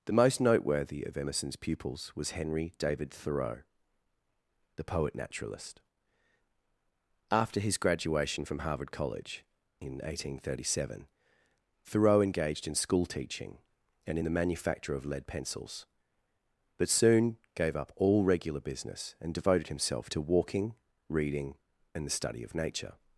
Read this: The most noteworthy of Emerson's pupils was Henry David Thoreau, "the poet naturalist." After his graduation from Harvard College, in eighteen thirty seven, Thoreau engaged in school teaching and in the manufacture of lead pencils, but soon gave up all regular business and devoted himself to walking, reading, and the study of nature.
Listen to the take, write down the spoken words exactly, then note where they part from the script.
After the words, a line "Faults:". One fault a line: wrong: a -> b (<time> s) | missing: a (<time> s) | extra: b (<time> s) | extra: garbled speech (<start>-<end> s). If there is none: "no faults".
The most noteworthy of Emerson's pupils was Henry David Thoreau, "the poet naturalist." After his graduation from Harvard College, in eighteen thirty seven, Thoreau engaged in school teaching and in the manufacture of lead pencils, but soon gave up all regular business and devoted himself to walking, reading, and the study of nature.
Faults:
no faults